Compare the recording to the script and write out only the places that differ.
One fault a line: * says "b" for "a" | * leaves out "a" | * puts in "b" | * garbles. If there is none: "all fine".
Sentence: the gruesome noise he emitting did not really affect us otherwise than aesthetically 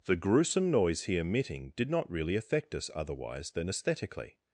all fine